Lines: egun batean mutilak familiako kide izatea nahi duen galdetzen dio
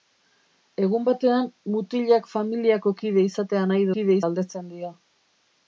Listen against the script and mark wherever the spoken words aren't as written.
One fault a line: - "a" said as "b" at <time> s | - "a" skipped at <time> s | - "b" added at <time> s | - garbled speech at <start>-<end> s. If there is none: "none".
- "duen" said as "kide" at 4.0 s